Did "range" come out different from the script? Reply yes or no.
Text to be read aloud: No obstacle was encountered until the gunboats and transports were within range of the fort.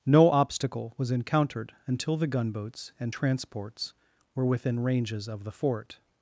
yes